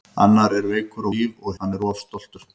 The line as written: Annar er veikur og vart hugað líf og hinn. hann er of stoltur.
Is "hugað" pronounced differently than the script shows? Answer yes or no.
yes